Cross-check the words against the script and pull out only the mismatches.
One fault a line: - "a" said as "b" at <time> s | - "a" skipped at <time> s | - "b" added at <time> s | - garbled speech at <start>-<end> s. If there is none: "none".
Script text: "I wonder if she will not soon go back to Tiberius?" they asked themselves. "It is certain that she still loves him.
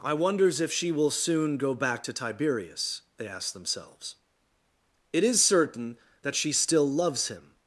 - "wonder" said as "wonders" at 0.1 s
- "not" skipped at 1.1 s